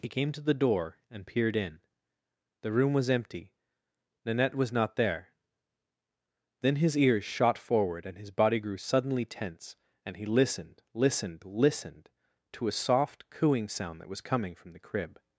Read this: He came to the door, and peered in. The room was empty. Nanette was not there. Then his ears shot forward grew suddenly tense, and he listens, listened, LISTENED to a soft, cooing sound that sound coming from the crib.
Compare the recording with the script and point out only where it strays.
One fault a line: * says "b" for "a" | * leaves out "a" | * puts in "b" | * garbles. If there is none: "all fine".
* puts in "and his body"
* says "listened" for "listens"
* says "was" for "sound"